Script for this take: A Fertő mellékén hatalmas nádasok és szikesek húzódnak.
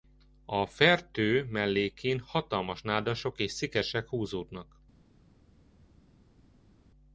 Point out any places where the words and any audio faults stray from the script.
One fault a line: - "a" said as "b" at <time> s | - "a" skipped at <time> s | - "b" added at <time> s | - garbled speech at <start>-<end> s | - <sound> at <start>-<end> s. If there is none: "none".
none